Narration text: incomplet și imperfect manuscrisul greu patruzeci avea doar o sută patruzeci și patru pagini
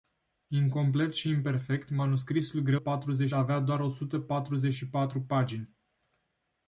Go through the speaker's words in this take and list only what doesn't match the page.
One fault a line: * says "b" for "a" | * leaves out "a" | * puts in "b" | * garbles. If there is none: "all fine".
all fine